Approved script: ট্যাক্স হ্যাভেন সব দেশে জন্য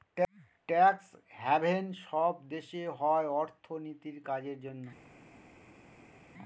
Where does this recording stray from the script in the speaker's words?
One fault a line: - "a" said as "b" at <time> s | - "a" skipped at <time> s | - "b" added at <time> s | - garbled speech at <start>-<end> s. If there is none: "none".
- "হয় অর্থনীতির কাজের" added at 3.0 s